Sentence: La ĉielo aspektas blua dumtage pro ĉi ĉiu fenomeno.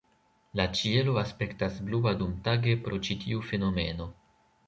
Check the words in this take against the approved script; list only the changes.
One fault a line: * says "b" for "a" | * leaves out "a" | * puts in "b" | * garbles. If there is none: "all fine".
* says "tiu" for "ĉiu"